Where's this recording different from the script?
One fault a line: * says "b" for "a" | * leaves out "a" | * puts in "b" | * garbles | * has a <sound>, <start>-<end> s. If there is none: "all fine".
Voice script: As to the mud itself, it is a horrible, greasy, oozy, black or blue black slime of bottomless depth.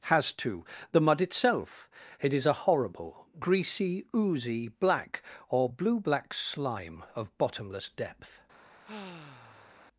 * says "Has" for "As"
* has a sigh, 8.8-9.8 s